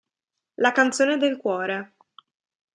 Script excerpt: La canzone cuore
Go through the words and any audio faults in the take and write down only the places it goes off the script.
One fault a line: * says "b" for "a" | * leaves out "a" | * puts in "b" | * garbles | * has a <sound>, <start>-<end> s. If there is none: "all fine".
* puts in "del"